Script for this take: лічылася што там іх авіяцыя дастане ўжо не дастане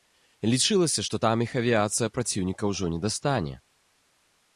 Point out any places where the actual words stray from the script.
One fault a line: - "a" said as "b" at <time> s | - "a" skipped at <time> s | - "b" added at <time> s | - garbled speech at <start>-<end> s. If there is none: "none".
- "дастане" said as "праціўніка" at 2.2 s